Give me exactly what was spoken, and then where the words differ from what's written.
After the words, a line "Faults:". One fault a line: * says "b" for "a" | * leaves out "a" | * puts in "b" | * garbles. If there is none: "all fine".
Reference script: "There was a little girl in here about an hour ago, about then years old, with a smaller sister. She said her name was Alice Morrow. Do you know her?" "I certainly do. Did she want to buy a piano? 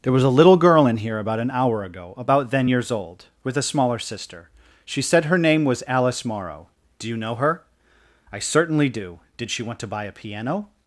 "There was a little girl in here about an hour ago, about then years old, with a smaller sister. She said her name was Alice Morrow. Do you know her?" "I certainly do. Did she want to buy a piano?
Faults:
all fine